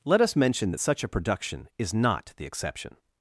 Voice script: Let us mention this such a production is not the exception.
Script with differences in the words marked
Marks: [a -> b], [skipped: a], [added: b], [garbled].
Let us mention [this -> that] such a production is not the exception.